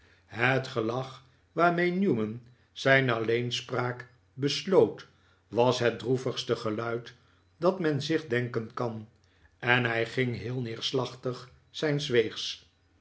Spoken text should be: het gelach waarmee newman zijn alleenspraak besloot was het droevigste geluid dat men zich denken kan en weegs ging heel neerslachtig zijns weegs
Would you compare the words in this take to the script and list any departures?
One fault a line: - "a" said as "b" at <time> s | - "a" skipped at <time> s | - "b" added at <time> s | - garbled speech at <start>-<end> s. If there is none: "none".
- "weegs" said as "hij" at 9.8 s